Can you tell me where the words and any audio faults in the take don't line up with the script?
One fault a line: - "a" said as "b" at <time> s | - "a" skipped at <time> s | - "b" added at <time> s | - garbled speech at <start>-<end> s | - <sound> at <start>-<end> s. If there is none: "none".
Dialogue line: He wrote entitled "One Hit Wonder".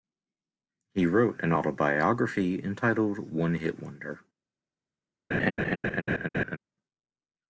- "an autobiography" added at 1.4 s
- laugh at 5.3-6.6 s